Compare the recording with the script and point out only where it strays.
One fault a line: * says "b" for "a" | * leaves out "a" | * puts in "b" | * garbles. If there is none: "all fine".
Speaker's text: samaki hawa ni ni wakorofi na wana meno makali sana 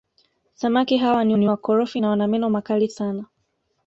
all fine